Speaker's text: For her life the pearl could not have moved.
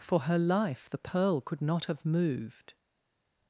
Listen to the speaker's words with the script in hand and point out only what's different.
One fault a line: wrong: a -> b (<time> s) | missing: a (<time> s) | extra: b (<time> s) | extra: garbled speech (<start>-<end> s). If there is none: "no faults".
no faults